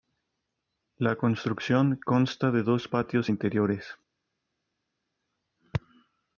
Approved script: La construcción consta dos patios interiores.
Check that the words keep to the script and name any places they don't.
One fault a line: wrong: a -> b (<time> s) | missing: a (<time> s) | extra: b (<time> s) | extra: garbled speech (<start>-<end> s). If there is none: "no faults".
extra: de (2.5 s)